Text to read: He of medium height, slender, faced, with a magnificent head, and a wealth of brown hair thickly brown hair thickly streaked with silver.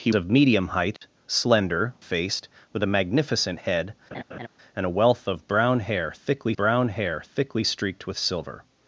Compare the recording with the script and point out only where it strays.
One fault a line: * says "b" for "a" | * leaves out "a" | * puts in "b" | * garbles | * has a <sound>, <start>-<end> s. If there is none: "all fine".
* has a dropout, 1.0-1.0 s
* has a laugh, 4.1-4.5 s